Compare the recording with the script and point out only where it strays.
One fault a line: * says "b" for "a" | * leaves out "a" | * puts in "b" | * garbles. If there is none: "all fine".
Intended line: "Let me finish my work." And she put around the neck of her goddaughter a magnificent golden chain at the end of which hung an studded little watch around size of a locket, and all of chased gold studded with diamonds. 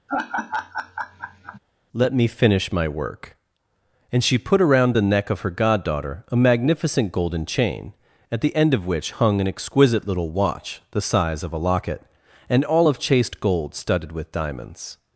* says "exquisite" for "studded"
* says "the" for "around"